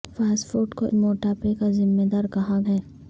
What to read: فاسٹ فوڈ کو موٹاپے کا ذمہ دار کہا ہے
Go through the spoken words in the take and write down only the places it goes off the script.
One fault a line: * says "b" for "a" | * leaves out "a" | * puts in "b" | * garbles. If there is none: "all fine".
all fine